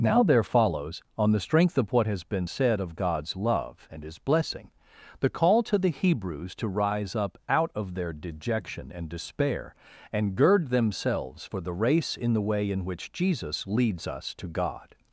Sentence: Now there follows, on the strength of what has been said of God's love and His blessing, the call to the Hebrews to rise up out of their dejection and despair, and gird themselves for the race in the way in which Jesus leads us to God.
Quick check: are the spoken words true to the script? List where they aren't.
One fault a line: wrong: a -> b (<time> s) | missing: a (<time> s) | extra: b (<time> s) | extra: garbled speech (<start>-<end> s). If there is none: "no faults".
no faults